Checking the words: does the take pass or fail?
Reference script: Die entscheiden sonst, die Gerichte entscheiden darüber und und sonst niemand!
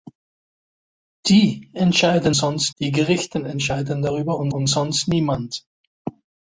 pass